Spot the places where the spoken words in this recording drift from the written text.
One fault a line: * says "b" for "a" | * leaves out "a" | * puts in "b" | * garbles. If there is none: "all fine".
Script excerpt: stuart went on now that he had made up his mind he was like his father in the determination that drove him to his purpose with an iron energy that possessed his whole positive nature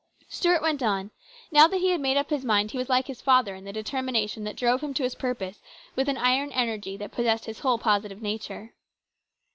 all fine